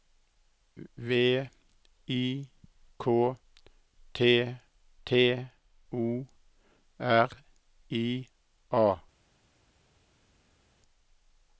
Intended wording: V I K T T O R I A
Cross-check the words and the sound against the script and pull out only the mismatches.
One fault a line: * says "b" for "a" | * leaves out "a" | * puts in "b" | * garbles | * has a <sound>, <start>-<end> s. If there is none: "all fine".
all fine